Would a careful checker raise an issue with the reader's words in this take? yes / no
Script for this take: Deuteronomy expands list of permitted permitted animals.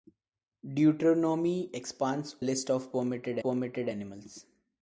no